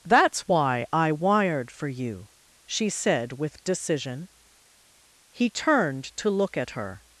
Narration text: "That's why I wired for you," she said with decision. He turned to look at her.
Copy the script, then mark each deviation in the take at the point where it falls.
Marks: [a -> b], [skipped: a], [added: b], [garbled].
"That's why I wired for you," she said with decision. He turned to look at her.